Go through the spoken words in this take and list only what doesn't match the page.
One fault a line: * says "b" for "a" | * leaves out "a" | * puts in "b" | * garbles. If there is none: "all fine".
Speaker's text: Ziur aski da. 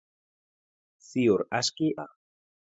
all fine